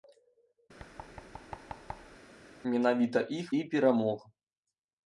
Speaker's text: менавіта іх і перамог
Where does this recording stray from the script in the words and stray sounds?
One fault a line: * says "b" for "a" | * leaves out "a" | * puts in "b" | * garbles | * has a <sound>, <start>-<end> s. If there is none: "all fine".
* has a thud, 0.8-2.2 s